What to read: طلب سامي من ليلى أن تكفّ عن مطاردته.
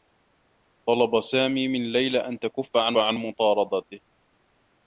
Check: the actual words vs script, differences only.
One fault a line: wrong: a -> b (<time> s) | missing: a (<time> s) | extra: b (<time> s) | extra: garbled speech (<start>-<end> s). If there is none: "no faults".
extra: عن (3.0 s)